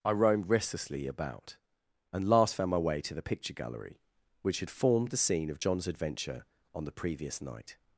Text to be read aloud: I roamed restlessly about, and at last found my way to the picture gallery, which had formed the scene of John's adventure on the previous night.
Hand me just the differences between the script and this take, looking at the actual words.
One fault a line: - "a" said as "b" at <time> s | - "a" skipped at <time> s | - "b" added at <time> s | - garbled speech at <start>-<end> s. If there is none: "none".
- "at" skipped at 2.2 s